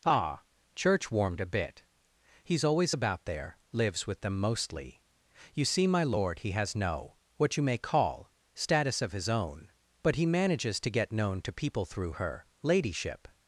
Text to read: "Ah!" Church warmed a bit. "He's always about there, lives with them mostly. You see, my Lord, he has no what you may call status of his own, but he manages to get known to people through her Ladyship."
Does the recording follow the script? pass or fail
pass